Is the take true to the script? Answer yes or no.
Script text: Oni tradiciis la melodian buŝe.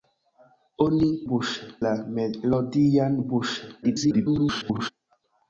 no